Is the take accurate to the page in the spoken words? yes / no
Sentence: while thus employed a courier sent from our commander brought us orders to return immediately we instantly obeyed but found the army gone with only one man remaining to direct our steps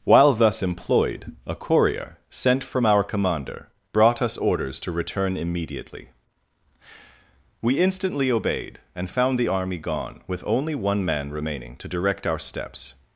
no